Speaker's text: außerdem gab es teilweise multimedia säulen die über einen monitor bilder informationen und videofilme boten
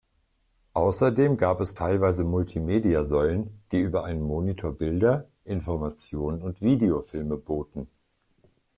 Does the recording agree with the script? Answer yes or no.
yes